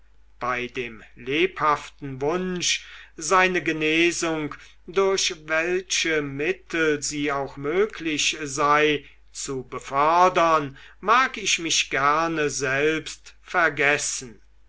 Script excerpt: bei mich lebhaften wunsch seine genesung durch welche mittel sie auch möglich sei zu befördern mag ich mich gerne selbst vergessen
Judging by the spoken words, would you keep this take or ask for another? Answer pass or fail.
fail